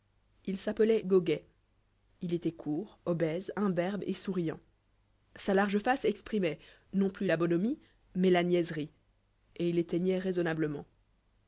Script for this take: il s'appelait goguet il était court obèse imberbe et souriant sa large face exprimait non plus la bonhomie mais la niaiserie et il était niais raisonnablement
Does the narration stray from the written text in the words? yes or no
no